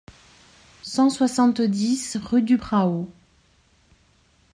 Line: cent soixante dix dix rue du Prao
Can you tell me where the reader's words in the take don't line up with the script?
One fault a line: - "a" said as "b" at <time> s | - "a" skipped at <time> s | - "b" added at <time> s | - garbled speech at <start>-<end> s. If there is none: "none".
- "dix" skipped at 2.2 s